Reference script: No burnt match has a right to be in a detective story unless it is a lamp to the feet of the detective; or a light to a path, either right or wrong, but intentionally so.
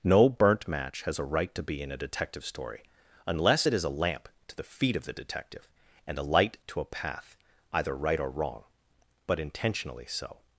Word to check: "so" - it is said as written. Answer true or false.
true